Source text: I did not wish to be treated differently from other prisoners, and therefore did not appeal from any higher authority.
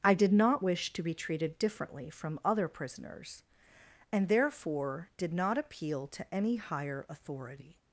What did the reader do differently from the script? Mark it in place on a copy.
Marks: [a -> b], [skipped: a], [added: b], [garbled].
I did not wish to be treated differently from other prisoners, and therefore did not appeal [from -> to] any higher authority.